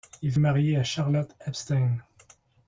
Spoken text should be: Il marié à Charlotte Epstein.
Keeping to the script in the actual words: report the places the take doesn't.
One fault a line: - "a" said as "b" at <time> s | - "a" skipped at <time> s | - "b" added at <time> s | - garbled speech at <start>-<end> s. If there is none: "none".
none